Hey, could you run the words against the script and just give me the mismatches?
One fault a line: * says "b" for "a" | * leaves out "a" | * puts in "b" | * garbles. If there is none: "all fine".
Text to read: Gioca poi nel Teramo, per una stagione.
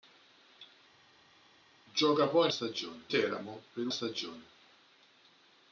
* says "stagione" for "nel"
* leaves out "una"